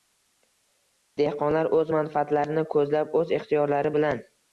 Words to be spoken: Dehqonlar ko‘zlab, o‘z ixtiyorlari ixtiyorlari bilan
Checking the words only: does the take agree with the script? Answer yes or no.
no